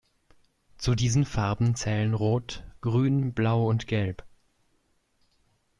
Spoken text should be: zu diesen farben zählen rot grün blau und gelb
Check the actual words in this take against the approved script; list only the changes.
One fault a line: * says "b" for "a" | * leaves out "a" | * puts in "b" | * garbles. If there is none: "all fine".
all fine